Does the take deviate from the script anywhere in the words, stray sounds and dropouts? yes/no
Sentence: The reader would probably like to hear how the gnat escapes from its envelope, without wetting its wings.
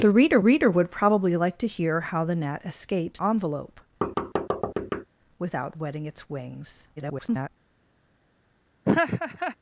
yes